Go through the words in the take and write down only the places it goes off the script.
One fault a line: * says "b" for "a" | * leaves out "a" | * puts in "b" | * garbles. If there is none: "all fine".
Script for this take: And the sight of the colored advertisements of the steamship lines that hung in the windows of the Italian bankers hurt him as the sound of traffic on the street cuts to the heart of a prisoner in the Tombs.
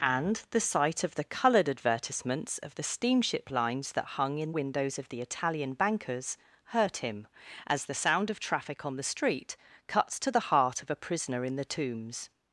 * leaves out "the"